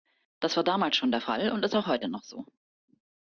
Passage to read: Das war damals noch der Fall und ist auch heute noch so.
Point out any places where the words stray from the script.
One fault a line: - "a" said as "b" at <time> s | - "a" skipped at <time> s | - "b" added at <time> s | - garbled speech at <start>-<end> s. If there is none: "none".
- "noch" said as "schon" at 0.9 s